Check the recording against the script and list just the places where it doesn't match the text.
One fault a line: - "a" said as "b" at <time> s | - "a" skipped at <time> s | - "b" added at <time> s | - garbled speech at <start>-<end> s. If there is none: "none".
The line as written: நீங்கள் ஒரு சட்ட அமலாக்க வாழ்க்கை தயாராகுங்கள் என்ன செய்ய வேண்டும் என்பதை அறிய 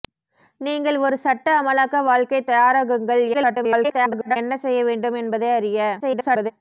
- garbled speech at 3.3-4.4 s
- garbled speech at 6.0-6.5 s